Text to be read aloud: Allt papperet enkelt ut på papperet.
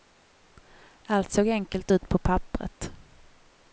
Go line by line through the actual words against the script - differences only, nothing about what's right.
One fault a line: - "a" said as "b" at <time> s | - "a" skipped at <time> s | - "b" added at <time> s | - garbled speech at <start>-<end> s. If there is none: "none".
- "papperet" said as "såg" at 1.3 s